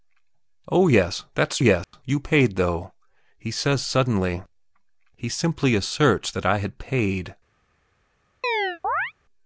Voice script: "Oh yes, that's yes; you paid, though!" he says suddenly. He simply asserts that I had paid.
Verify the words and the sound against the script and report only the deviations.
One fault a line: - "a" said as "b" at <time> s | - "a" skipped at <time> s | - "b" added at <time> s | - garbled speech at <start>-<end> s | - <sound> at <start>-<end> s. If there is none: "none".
- dropout at 1.8-1.9 s
- chirp at 8.4-9.1 s